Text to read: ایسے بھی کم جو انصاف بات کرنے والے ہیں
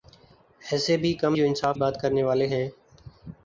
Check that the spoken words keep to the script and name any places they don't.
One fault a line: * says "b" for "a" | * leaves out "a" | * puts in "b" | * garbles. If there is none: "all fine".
all fine